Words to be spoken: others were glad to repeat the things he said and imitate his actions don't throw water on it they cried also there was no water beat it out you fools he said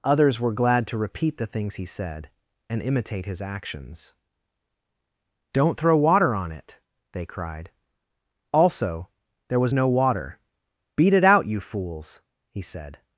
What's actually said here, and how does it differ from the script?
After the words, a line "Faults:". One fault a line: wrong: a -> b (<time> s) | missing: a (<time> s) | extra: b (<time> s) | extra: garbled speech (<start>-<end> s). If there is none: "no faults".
others were glad to repeat the things he said and imitate his actions don't throw water on it they cried also there was no water beat it out you fools he said
Faults:
no faults